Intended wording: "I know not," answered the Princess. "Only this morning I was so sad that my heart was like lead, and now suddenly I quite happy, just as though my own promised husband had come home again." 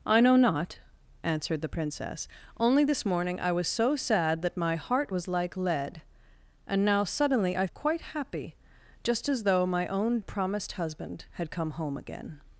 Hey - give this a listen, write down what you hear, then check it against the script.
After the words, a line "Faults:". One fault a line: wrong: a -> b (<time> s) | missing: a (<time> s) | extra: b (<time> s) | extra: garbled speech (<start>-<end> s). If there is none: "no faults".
"I know not," answered the Princess. "Only this morning I was so sad that my heart was like lead, and now suddenly I quite happy, just as though my own promised husband had come home again."
Faults:
no faults